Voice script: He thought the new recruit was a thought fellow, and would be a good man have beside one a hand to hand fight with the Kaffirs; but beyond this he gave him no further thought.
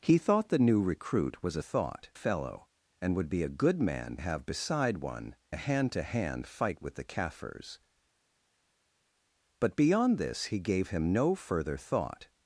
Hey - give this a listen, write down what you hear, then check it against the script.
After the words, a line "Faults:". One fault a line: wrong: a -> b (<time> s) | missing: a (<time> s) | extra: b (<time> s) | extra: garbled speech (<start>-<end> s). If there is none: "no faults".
He thought the new recruit was a thought fellow, and would be a good man have beside one a hand to hand fight with the Kaffirs; but beyond this he gave him no further thought.
Faults:
no faults